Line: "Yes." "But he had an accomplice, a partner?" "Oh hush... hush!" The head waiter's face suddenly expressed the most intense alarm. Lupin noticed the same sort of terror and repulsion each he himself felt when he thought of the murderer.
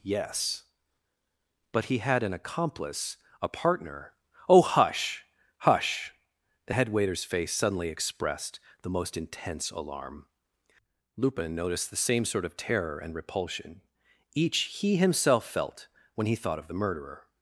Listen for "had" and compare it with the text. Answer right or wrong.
right